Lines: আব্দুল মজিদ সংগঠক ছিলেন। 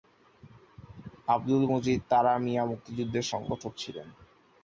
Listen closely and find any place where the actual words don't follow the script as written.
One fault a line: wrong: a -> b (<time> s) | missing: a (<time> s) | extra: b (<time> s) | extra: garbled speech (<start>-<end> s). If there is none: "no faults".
extra: তারা মিয়া মুক্তিযুদ্ধের (2.1 s)